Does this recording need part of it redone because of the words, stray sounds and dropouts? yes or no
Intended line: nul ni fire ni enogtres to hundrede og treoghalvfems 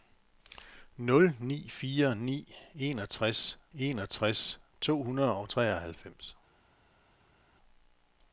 yes